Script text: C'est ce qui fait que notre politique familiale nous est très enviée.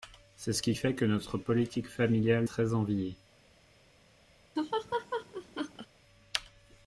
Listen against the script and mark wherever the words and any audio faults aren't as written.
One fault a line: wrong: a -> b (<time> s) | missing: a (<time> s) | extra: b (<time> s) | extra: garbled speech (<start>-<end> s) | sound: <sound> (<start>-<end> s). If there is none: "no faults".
missing: nous est (2.5 s)
sound: laugh (4.6-5.9 s)